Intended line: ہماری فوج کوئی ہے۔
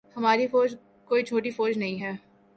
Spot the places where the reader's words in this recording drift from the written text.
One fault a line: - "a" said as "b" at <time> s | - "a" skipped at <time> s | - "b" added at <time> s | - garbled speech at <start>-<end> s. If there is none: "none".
- "چھوٹی فوج نہیں" added at 1.2 s